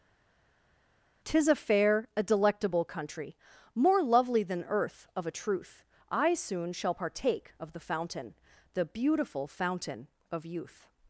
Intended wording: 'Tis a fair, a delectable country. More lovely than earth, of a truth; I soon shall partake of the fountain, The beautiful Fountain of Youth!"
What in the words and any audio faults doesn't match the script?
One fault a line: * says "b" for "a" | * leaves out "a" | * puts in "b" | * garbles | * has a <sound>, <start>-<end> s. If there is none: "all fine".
all fine